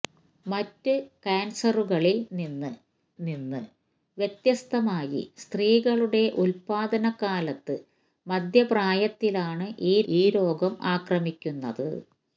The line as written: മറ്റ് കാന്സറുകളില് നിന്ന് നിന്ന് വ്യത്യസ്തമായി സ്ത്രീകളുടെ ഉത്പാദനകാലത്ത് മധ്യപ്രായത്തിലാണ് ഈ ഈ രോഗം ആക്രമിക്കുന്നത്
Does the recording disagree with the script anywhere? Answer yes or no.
no